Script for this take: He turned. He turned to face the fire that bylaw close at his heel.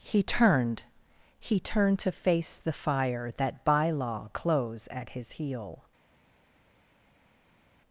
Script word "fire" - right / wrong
right